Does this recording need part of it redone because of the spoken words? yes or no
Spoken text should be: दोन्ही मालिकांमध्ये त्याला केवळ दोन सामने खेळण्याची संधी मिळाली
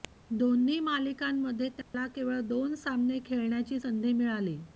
no